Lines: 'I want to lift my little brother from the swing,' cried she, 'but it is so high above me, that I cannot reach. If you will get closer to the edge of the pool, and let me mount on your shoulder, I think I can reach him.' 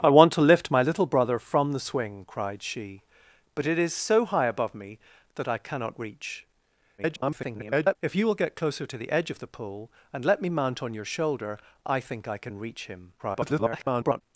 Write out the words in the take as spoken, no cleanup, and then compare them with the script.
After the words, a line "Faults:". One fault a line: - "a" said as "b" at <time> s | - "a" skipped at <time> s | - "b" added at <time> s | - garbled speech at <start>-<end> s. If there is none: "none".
'I want to lift my little brother from the swing,' cried she, 'but it is so high above me, that I cannot reach. [garbled] If you will get closer to the edge of the pool, and let me mount on your shoulder, I think I can reach him.' [garbled]
Faults:
- garbled speech at 7.0-8.0 s
- garbled speech at 13.2-14.2 s